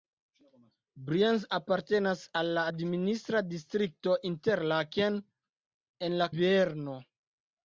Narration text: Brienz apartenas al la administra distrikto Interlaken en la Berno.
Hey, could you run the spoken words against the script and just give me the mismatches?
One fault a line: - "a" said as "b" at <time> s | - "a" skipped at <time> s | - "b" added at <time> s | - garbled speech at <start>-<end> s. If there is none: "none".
none